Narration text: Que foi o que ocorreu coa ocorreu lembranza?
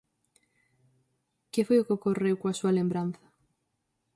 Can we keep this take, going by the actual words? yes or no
no